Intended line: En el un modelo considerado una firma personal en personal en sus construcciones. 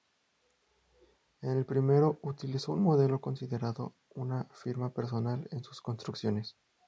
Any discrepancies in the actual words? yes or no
yes